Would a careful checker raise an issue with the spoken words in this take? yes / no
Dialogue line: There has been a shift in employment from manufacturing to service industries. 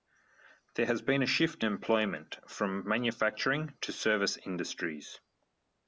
yes